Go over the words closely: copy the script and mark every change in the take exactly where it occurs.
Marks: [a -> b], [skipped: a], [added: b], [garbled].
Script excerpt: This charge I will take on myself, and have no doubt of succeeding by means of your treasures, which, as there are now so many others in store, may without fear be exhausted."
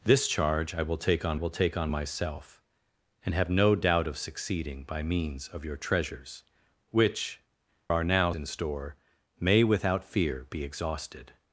This charge I will take on [added: will take on] myself, and have no doubt of succeeding by means of your treasures, which, [skipped: as there] are now [skipped: so many others] in store, may without fear be exhausted."